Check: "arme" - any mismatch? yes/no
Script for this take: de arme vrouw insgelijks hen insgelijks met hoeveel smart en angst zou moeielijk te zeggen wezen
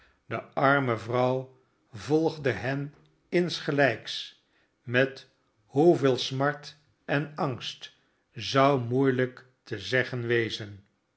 no